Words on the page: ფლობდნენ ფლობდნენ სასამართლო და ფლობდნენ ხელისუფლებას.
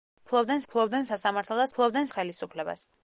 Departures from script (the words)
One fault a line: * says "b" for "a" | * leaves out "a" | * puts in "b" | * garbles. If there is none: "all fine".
all fine